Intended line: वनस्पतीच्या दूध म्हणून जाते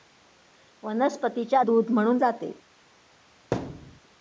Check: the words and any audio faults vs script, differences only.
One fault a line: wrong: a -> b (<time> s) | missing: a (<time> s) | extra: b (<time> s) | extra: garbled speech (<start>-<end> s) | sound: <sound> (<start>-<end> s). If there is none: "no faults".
sound: thud (3.5-4.0 s)